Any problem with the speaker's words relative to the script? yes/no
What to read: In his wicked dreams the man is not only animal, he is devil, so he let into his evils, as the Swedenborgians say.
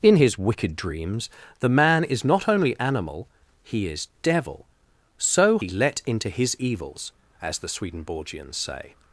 no